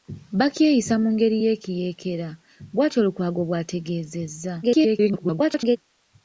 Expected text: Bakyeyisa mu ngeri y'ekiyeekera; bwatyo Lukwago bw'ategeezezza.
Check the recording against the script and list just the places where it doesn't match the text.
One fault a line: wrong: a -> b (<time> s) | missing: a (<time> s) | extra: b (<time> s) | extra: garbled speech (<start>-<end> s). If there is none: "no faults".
extra: garbled speech (4.6-5.8 s)